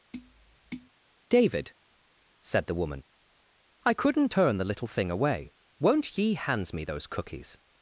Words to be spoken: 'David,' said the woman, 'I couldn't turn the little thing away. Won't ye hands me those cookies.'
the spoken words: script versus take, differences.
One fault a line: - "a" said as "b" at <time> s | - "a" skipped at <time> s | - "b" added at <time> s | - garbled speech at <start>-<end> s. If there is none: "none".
none